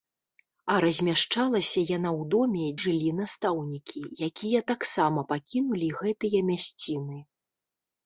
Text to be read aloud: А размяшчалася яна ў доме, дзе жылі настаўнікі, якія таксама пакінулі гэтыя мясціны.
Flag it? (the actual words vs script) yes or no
yes